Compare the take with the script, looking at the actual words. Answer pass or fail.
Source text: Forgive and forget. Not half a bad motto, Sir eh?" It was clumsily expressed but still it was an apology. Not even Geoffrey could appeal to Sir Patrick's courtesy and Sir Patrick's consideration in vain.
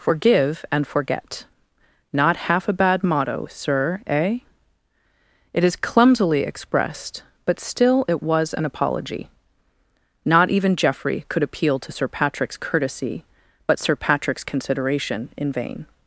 fail